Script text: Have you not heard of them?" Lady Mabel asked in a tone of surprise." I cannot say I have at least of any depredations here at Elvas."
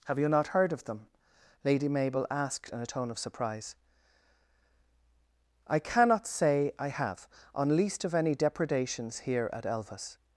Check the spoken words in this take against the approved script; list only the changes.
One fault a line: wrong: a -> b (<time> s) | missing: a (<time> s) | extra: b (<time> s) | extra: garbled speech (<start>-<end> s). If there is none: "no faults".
wrong: at -> on (7.5 s)